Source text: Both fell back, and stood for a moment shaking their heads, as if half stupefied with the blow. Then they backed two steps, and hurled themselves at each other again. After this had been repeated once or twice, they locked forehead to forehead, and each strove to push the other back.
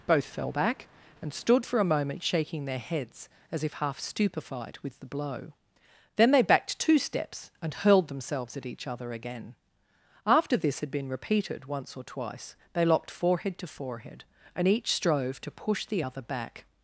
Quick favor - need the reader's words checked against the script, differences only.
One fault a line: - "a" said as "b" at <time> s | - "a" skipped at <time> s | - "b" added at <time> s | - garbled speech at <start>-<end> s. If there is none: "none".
none